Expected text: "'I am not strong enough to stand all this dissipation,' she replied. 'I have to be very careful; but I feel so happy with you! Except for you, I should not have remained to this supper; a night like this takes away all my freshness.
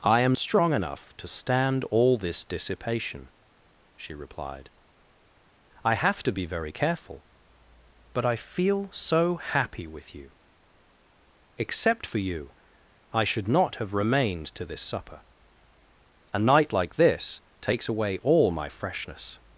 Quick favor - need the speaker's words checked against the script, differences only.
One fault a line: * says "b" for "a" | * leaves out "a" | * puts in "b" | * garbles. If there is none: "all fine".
* leaves out "not"